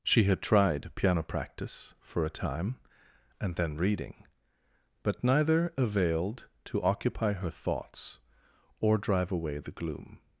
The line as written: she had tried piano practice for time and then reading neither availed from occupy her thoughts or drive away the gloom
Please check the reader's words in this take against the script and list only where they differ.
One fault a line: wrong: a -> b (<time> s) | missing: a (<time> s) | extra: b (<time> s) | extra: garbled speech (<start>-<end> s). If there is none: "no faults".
extra: a (2.2 s)
extra: but (5.0 s)
wrong: from -> to (6.7 s)